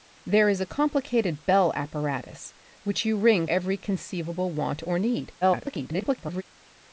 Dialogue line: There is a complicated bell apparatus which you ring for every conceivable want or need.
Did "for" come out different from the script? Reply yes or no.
yes